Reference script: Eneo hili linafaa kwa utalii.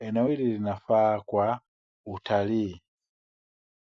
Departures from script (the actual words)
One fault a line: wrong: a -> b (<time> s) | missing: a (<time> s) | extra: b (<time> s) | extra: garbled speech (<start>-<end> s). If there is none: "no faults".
no faults